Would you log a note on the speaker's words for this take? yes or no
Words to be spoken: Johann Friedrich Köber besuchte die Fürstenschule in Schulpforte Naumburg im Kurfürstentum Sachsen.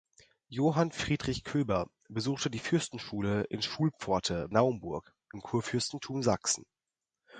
no